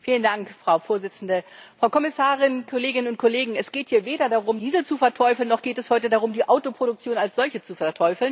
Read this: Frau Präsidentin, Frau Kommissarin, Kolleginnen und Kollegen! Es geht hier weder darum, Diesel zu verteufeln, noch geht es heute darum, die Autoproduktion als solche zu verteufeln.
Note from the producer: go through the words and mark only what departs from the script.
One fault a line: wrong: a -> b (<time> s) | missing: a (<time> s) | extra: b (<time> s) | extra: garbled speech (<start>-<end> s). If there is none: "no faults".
no faults